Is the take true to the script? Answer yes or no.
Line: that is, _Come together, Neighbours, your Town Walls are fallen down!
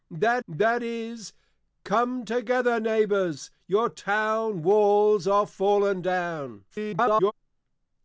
no